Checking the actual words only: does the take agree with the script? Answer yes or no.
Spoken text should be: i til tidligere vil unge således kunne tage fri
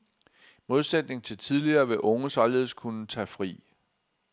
no